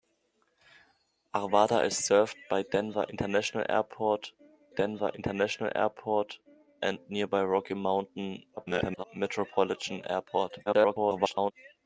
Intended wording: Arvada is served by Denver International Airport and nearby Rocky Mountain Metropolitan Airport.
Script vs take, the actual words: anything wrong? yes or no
yes